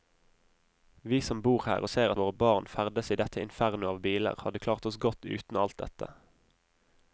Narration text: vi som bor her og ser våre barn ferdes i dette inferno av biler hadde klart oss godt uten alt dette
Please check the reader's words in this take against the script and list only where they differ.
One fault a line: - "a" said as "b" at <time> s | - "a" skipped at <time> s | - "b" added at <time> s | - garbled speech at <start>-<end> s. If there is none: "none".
none